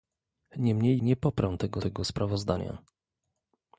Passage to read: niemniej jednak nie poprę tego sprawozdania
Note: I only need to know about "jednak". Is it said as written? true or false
false